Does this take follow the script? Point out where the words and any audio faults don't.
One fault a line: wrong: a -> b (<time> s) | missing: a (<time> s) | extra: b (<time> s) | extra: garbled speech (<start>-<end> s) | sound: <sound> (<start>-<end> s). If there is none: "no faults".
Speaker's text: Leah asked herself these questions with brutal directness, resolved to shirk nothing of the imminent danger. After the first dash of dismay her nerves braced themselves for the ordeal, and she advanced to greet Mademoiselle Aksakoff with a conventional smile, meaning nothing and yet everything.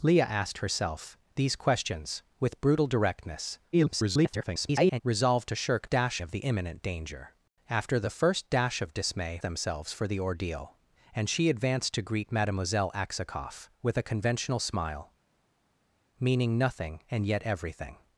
extra: garbled speech (3.7-5.0 s)
wrong: nothing -> dash (5.9 s)
missing: her nerves braced (9.4 s)